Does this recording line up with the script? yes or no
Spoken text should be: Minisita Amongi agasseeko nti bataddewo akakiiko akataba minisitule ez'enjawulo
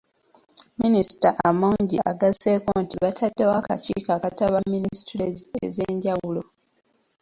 yes